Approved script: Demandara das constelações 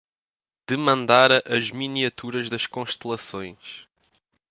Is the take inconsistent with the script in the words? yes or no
yes